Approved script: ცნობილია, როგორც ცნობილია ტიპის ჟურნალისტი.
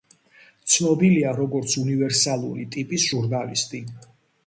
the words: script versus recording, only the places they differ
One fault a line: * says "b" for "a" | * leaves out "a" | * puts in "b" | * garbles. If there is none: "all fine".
* says "უნივერსალური" for "ცნობილია"